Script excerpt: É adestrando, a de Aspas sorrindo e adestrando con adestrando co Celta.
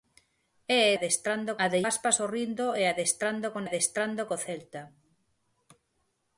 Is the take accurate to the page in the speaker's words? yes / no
yes